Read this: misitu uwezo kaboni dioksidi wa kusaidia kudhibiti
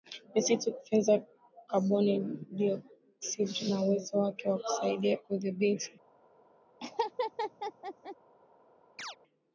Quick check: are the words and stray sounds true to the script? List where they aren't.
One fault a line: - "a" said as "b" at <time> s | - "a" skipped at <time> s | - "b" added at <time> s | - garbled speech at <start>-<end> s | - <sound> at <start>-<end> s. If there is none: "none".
- "uwezo" said as "kufyonza" at 0.7 s
- "na uwezo wake" added at 3.7 s
- laugh at 6.8-8.2 s
- chirp at 9.0-9.2 s